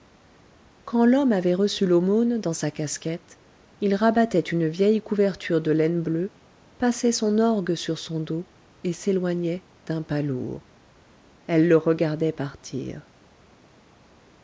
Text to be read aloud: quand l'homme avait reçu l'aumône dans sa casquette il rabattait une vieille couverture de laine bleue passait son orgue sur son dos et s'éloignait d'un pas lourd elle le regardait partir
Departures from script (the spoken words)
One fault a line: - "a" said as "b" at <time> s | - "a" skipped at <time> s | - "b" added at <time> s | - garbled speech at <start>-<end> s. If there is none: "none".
none